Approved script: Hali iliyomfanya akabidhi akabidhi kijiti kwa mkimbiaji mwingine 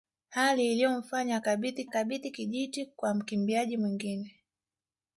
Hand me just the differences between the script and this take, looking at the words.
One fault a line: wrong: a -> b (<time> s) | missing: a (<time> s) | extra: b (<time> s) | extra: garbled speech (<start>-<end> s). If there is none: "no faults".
no faults